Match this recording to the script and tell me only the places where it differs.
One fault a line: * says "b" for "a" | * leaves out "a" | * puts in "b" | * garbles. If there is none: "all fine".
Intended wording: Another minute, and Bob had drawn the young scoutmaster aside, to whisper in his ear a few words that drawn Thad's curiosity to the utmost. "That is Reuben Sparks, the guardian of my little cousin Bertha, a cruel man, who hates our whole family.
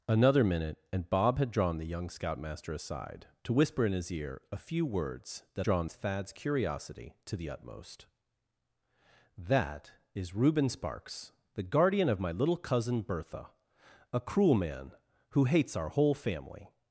all fine